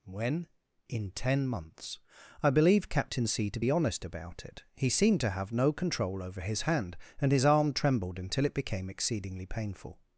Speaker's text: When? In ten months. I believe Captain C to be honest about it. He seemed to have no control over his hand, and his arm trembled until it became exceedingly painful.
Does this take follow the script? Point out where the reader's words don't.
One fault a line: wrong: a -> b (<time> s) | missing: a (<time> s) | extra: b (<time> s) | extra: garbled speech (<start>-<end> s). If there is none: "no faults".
no faults